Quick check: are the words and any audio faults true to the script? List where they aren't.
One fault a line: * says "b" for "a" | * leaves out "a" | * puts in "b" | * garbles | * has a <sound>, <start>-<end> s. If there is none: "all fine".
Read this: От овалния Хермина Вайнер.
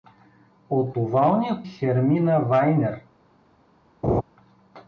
* has a laugh, 4.0-4.2 s